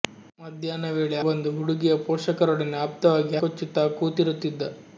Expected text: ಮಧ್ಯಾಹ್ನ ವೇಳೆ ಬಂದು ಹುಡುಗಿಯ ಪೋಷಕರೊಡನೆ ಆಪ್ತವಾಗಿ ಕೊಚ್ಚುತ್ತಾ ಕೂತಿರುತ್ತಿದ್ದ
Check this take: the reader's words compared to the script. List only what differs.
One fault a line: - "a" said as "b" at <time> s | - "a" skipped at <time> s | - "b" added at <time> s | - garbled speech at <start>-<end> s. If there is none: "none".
none